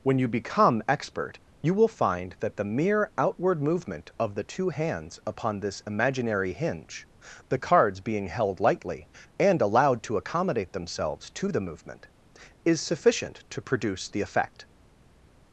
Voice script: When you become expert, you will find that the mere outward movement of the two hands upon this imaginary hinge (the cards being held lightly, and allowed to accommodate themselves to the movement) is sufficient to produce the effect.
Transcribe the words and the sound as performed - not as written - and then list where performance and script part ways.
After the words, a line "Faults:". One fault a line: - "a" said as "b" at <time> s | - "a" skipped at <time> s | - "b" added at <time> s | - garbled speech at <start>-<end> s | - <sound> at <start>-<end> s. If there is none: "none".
When you become expert, you will find that the mere outward movement of the two hands upon this imaginary hinge (the cards being held lightly, and allowed to accommodate themselves to the movement) is sufficient to produce the effect.
Faults:
none